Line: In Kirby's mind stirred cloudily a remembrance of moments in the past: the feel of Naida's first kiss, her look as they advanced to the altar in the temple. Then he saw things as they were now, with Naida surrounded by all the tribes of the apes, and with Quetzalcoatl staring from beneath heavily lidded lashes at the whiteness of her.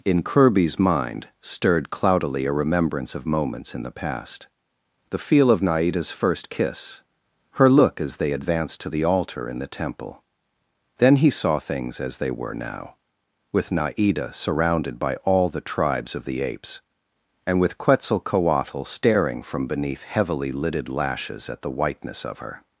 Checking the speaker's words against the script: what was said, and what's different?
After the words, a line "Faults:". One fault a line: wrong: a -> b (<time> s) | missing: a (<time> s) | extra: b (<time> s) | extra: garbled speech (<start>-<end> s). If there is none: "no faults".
In Kirby's mind stirred cloudily a remembrance of moments in the past: the feel of Naida's first kiss, her look as they advanced to the altar in the temple. Then he saw things as they were now, with Naida surrounded by all the tribes of the apes, and with Quetzalcoatl staring from beneath heavily lidded lashes at the whiteness of her.
Faults:
no faults